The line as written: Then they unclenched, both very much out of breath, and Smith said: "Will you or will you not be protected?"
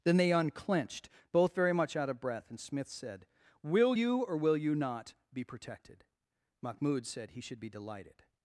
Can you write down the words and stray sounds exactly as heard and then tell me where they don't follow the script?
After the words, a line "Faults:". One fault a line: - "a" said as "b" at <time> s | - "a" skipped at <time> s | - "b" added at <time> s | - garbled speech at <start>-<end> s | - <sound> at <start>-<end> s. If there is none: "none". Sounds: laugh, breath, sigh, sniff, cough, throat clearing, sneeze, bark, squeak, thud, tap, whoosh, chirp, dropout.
Then they unclenched, both very much out of breath, and Smith said: "Will you or will you not be protected?" Mahmoud said he should be delighted
Faults:
- "Mahmoud said he should be delighted" added at 6.6 s